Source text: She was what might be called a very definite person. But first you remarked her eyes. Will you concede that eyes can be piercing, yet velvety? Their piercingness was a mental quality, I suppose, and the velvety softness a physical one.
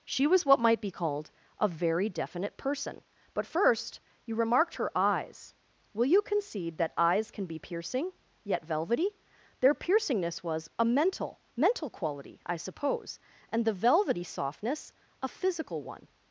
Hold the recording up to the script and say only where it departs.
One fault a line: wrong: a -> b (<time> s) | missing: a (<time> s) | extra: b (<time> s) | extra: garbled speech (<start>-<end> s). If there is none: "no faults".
extra: mental (11.6 s)